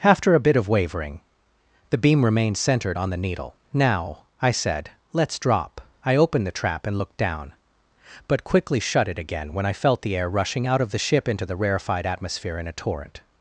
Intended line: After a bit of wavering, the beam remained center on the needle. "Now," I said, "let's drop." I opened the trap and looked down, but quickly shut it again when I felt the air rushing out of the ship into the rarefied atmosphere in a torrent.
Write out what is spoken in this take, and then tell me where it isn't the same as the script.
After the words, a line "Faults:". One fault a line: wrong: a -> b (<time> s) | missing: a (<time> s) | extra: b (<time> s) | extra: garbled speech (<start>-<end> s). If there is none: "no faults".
After a bit of wavering, the beam remained centered on the needle. "Now," I said, "let's drop." I opened the trap and looked down, but quickly shut it again when I felt the air rushing out of the ship into the rarefied atmosphere in a torrent.
Faults:
wrong: center -> centered (2.6 s)